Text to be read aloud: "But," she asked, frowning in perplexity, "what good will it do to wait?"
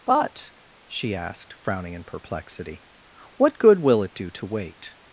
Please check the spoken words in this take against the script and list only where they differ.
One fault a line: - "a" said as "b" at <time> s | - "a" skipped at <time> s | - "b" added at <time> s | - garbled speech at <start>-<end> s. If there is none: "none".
none